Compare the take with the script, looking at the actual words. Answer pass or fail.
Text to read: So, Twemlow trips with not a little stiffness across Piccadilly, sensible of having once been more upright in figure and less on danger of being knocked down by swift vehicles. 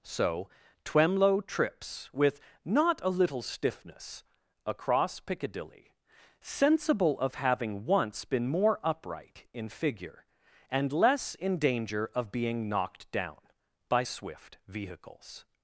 fail